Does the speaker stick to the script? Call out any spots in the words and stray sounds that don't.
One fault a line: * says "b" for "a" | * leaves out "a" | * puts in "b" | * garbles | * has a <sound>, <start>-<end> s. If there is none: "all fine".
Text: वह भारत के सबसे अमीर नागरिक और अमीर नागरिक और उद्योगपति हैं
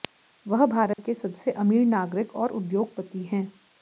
* has a dropout, 0.9-1.0 s
* leaves out "अमीर नागरिक और"